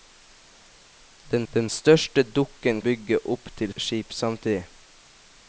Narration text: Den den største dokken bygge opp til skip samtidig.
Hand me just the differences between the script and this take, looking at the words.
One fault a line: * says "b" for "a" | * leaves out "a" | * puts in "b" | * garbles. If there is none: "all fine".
all fine